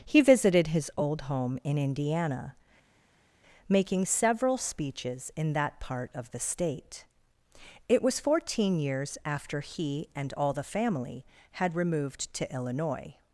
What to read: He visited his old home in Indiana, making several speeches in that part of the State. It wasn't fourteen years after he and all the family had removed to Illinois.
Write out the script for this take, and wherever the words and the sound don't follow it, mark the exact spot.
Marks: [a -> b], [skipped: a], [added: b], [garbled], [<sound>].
He visited his old home in Indiana, making several speeches in that part of the State. It [wasn't -> was] fourteen years after he and all the family had removed to Illinois.